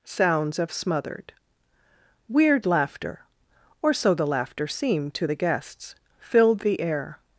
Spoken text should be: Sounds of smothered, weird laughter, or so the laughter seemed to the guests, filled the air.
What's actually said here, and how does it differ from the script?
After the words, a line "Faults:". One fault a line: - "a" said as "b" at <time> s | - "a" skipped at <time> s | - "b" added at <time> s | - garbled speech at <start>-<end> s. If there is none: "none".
Sounds of smothered, weird laughter, or so the laughter seemed to the guests, filled the air.
Faults:
none